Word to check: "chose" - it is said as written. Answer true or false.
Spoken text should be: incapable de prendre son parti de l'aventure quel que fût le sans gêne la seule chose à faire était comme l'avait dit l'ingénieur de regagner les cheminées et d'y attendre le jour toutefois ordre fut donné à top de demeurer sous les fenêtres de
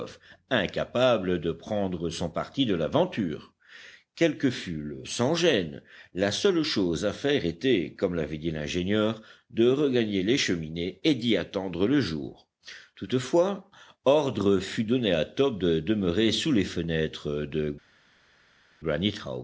true